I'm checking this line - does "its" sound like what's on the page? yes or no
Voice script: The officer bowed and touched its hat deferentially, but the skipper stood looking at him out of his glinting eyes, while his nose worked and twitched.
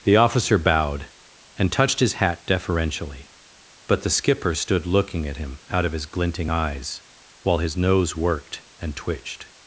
no